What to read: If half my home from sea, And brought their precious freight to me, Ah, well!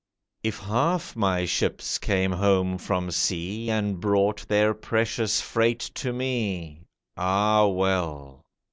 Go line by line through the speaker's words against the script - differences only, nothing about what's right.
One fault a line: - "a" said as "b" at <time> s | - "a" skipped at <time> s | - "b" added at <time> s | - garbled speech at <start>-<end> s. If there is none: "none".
- "ships came" added at 1.4 s